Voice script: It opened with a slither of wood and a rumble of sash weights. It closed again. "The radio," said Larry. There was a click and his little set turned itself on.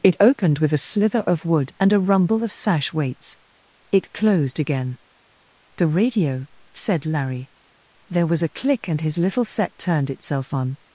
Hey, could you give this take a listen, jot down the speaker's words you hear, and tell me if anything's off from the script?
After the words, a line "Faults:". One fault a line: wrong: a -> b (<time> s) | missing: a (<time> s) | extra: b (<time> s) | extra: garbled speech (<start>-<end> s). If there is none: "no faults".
It opened with a slither of wood and a rumble of sash weights. It closed again. "The radio," said Larry. There was a click and his little set turned itself on.
Faults:
no faults